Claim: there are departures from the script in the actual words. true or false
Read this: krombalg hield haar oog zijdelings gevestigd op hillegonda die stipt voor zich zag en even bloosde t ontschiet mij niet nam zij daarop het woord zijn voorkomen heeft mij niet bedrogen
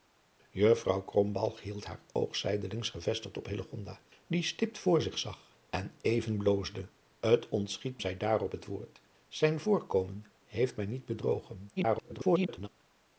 true